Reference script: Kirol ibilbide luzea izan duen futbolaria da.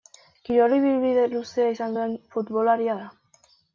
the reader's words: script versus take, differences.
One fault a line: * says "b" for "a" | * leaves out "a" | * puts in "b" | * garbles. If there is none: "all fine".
all fine